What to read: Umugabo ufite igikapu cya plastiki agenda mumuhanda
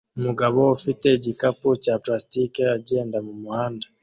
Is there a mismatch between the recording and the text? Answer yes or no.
no